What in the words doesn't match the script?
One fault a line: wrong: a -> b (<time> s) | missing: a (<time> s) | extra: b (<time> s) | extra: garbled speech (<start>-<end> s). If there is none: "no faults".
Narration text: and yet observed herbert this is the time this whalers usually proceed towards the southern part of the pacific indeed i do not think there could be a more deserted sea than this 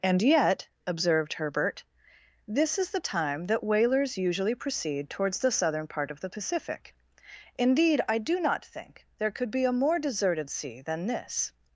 wrong: this -> that (3.5 s)